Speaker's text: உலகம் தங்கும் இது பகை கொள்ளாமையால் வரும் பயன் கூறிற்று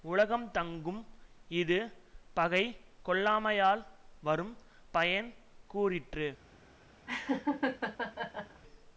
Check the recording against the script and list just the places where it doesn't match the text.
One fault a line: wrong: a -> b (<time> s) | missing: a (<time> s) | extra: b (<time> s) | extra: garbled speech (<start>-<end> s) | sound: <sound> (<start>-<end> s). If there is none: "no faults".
sound: laugh (7.1-8.6 s)